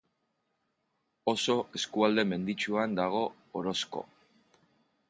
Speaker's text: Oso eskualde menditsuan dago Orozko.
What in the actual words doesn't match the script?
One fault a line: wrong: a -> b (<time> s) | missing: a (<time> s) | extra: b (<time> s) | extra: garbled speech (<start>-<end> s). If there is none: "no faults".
no faults